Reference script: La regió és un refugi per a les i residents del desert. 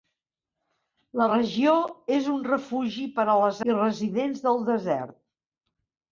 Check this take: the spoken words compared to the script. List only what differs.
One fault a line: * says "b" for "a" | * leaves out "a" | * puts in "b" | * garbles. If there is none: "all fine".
all fine